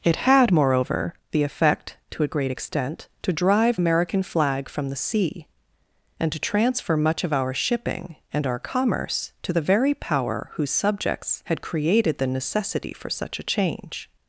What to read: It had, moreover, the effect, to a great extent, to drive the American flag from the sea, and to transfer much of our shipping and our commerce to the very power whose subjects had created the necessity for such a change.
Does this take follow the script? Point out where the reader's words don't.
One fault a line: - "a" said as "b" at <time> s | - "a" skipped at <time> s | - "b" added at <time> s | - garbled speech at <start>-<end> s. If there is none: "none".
- "the" skipped at 3.8 s